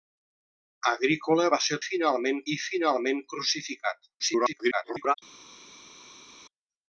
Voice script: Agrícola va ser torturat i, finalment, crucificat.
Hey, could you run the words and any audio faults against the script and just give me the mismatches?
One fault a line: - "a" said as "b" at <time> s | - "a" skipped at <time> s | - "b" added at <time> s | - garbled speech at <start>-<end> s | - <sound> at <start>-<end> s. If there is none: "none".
- "torturat" said as "finalment" at 1.9 s
- garbled speech at 4.2-5.1 s